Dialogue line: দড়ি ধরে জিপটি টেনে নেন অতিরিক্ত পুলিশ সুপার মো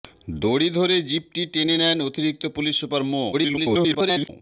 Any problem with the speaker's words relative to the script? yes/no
yes